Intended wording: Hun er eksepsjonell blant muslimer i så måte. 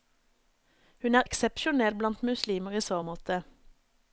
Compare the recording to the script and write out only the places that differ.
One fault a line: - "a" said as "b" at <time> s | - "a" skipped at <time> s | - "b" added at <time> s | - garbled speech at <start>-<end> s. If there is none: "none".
none